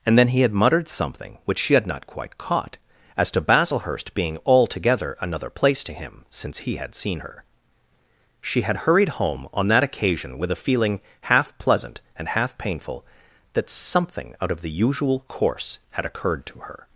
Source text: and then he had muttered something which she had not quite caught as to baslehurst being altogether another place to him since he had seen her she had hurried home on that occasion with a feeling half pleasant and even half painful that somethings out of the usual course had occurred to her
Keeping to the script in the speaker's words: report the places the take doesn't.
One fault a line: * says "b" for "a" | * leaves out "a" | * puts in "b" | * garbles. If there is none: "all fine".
* leaves out "even"
* says "something" for "somethings"